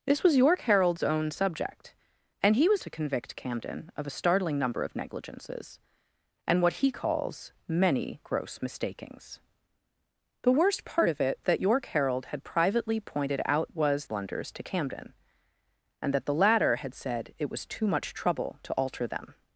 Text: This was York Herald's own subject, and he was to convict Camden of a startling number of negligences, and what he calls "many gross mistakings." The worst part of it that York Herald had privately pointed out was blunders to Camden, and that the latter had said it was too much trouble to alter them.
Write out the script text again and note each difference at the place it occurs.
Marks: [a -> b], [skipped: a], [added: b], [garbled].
This was York Herald's own subject, and he was to convict Camden of a startling number of negligences, and what he calls "many gross mistakings." The worst part of it that York Herald had privately pointed out was blunders to Camden, and that the latter had said it was too much trouble to alter them.